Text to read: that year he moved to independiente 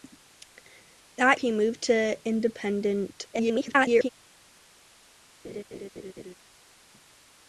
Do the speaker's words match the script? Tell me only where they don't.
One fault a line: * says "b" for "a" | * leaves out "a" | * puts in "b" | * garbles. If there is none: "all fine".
* leaves out "year"
* garbles